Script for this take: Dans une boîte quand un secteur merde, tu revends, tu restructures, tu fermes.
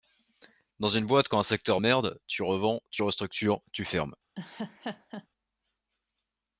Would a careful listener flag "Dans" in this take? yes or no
no